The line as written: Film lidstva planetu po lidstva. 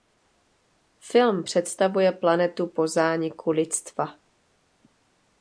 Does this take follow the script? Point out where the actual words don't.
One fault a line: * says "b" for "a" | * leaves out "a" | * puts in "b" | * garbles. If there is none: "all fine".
* says "představuje" for "lidstva"
* puts in "zániku"